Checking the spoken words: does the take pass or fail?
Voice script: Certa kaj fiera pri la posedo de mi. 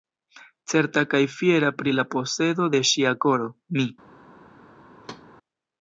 fail